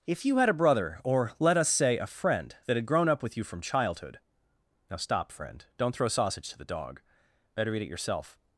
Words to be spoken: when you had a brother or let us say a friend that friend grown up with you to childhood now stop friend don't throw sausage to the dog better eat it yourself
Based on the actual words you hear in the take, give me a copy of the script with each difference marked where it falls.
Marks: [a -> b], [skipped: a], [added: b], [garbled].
[when -> if] you had a brother or let us say a friend that [friend -> had] grown up with you [to -> from] childhood now stop friend don't throw sausage to the dog better eat it yourself